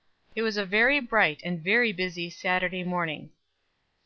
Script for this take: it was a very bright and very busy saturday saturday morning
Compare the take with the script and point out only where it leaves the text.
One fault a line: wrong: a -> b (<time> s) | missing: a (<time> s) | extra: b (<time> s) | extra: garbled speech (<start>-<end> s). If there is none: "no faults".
missing: saturday (2.8 s)